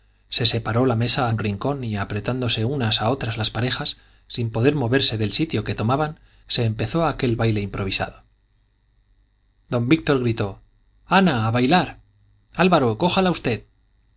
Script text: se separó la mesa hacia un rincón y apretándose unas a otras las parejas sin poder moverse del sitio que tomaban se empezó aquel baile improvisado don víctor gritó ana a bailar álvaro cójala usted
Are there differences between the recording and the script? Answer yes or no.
yes